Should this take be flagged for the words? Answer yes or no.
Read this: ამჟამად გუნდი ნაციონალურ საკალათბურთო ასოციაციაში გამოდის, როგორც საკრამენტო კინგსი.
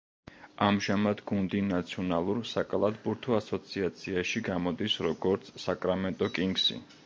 no